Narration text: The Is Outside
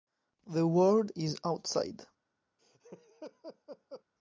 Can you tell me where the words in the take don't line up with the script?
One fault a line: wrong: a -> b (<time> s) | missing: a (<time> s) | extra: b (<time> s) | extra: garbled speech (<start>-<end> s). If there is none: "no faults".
extra: World (0.7 s)